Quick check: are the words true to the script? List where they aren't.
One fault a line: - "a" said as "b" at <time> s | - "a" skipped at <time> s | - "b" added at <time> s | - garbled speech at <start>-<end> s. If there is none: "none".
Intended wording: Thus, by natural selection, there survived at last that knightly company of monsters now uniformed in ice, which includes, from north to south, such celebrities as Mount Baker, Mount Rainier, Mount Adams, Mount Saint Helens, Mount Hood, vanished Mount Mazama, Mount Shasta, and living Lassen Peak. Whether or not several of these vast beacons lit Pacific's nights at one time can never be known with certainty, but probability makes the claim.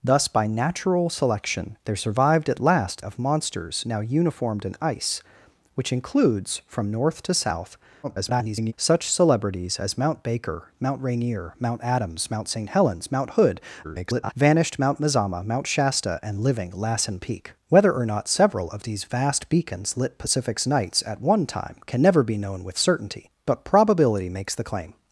- "that knightly company" skipped at 3.0 s
- garbled speech at 8.0-8.7 s
- garbled speech at 13.8-14.3 s